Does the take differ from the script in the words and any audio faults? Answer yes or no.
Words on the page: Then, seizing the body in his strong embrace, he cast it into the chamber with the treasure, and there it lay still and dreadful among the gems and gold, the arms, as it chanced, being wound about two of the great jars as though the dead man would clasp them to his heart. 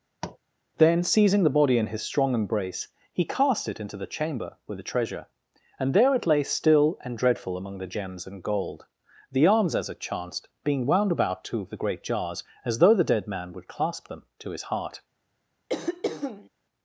yes